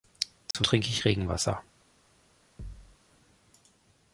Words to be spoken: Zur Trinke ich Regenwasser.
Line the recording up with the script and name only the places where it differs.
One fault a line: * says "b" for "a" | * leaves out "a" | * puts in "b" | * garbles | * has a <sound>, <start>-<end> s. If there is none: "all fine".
* has a dropout, 0.5-0.5 s
* has a thud, 2.6-3.0 s